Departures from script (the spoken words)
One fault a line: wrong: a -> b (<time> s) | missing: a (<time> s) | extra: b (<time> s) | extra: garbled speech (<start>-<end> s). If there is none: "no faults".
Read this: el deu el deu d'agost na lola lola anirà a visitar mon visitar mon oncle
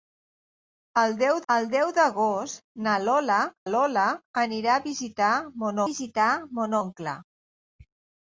no faults